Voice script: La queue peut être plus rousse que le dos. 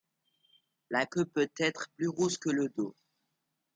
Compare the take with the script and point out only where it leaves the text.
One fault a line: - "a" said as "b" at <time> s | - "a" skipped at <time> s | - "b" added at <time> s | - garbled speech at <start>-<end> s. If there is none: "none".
none